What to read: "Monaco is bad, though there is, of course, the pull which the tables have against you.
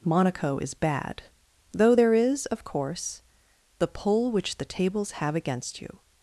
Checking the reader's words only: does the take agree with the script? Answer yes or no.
yes